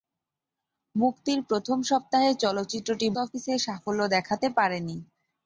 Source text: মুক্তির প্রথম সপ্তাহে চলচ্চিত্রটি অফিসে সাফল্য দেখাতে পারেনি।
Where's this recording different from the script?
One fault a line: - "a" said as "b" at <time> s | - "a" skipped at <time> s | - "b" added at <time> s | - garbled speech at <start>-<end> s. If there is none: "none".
none